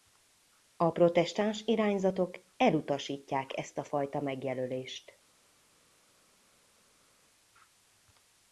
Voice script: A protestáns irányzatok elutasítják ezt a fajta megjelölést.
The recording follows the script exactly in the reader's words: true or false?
true